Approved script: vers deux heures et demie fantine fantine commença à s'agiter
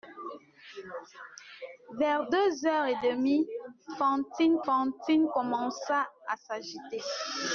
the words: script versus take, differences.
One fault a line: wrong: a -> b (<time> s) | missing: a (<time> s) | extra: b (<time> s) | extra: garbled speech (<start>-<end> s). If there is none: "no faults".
no faults